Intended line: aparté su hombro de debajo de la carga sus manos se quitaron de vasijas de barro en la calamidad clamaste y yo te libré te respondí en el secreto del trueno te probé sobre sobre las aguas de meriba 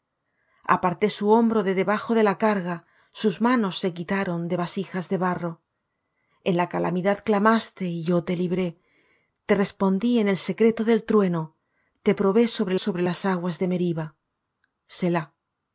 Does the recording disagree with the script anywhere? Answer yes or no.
no